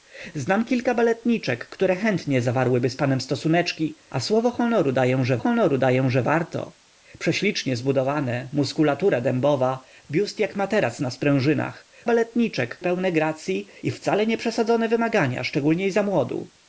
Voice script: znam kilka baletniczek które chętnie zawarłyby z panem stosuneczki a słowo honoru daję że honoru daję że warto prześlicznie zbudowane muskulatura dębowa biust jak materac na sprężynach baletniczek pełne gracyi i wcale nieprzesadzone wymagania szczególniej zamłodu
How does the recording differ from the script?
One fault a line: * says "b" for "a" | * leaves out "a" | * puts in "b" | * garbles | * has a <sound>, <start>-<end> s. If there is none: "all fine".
all fine